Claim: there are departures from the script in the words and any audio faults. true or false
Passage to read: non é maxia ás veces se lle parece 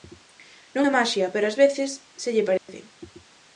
true